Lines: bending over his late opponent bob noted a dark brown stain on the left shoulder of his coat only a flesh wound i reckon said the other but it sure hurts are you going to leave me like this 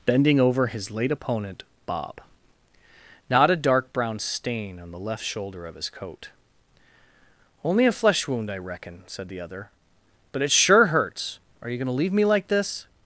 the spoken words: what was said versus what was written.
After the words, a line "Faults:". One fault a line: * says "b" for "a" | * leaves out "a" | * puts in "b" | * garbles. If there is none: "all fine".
bending over his late opponent bob not a dark brown stain on the left shoulder of his coat only a flesh wound i reckon said the other but it sure hurts are you going to leave me like this
Faults:
* says "not" for "noted"